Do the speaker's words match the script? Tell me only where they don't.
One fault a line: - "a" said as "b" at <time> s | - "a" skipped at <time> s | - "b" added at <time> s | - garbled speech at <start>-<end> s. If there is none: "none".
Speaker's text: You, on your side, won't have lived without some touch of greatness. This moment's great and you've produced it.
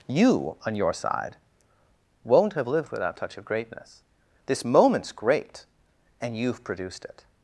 - "some" skipped at 3.2 s